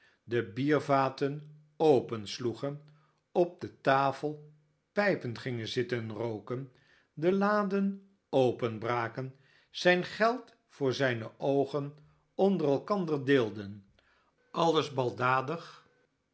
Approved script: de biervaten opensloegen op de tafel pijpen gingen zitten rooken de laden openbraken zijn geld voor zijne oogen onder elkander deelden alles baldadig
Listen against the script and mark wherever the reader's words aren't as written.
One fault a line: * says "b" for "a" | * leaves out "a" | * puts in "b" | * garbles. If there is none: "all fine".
all fine